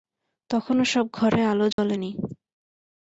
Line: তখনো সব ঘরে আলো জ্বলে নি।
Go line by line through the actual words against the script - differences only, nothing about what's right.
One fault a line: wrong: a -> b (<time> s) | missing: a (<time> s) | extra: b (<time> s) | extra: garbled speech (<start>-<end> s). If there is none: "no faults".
no faults